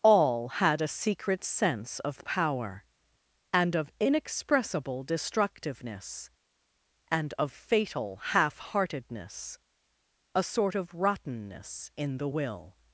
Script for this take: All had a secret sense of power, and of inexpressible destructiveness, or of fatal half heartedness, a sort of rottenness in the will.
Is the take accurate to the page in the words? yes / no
no